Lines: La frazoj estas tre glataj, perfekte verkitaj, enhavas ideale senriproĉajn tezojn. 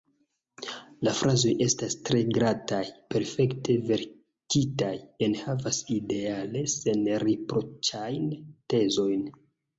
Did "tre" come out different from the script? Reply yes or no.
no